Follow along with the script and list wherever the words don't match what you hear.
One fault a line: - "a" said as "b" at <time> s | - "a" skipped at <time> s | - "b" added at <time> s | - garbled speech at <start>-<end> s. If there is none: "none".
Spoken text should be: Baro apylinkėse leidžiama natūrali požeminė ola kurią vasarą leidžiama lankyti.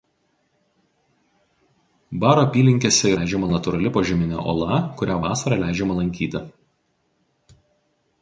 none